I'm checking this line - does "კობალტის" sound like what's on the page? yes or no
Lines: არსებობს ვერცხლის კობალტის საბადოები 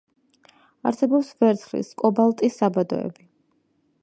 yes